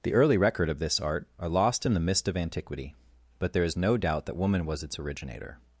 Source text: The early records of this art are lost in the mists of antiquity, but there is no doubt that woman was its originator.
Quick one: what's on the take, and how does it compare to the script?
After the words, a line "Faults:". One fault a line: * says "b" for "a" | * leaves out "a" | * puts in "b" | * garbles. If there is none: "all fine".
The early record of this art are lost in the mist of antiquity, but there is no doubt that woman was its originator.
Faults:
* says "record" for "records"
* says "mist" for "mists"